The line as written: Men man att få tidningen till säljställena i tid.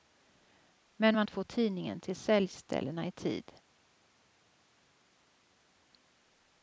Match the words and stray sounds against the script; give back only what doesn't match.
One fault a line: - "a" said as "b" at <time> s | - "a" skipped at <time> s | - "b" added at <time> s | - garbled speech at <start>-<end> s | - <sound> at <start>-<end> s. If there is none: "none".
none